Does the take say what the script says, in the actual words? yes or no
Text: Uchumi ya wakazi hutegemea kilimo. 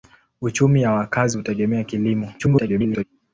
no